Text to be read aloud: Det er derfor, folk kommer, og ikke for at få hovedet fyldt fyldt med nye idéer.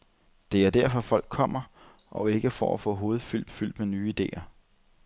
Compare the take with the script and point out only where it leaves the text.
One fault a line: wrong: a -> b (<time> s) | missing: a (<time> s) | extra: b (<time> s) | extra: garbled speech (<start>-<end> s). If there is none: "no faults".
no faults